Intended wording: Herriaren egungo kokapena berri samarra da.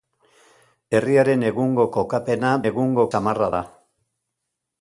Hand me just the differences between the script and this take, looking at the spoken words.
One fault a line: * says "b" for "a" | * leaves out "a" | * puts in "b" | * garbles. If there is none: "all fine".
* says "egungo" for "berri"